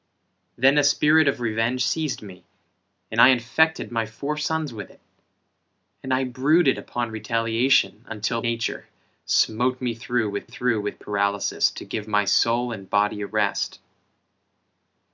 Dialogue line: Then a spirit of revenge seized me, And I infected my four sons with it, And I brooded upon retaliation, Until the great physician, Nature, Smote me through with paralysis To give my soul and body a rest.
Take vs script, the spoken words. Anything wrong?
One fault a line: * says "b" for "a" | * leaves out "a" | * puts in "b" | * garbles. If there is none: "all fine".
* leaves out "the great physician"
* puts in "through with"